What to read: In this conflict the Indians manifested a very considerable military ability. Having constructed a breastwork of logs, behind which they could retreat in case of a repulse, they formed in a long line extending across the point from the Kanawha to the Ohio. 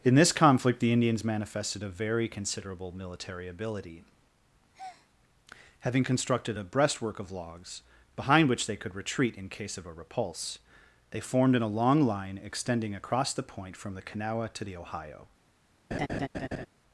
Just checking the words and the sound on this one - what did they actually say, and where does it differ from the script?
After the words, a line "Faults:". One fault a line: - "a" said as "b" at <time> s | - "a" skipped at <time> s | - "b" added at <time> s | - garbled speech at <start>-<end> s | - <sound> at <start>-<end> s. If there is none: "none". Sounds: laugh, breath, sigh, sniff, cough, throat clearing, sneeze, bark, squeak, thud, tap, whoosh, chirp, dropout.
In this conflict the Indians manifested a very considerable military ability. Having constructed a breastwork of logs, behind which they could retreat in case of a repulse, they formed in a long line extending across the point from the Kanawha to the Ohio.
Faults:
- breath at 4.7-5.1 s
- laugh at 15.9-16.7 s